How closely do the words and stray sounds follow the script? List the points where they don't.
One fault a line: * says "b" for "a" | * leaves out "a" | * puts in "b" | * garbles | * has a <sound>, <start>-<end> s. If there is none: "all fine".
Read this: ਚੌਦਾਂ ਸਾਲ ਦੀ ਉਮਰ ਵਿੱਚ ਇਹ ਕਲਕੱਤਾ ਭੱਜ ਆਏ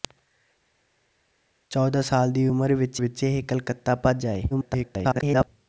* puts in "ਵਿੱਚ"
* garbles